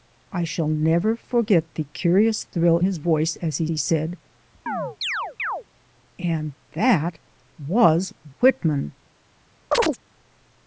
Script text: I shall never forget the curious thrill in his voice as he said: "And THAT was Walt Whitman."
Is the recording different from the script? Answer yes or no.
yes